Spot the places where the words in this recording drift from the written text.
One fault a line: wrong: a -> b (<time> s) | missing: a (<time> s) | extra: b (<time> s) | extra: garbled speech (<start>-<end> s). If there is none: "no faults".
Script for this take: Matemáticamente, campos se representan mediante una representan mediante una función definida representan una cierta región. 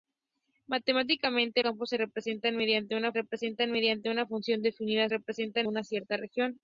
no faults